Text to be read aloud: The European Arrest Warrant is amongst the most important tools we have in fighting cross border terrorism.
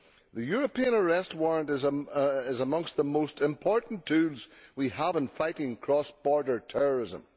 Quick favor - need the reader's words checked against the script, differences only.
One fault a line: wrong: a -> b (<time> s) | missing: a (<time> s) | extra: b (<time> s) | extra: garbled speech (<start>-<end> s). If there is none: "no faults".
no faults